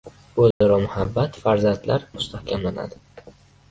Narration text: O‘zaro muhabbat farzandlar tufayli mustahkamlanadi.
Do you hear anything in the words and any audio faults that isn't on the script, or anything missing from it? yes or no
yes